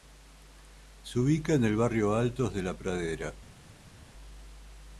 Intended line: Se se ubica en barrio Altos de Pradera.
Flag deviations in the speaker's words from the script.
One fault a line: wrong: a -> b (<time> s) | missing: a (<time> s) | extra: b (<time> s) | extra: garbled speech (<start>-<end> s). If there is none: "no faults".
missing: se (1.2 s)
extra: el (1.6 s)
extra: la (2.6 s)